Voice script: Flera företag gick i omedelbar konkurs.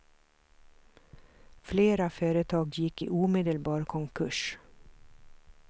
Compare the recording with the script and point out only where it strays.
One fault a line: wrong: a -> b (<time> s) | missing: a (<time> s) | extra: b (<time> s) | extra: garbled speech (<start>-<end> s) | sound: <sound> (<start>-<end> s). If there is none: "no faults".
no faults